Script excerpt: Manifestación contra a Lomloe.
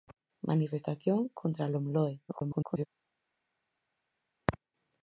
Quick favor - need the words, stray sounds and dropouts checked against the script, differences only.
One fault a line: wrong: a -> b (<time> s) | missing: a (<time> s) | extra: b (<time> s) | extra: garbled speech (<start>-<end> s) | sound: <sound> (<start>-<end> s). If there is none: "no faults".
extra: garbled speech (2.3-2.9 s)